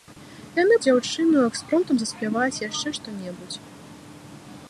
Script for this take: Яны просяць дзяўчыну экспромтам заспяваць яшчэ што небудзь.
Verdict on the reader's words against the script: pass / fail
fail